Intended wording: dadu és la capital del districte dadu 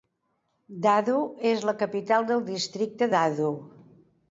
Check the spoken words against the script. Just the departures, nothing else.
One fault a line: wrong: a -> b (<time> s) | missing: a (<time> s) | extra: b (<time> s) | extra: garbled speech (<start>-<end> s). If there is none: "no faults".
no faults